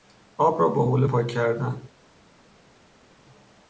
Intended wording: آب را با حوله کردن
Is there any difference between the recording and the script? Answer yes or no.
yes